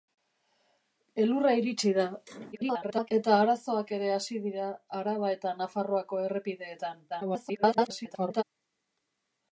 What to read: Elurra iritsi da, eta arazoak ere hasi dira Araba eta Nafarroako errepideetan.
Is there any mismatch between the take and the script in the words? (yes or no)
yes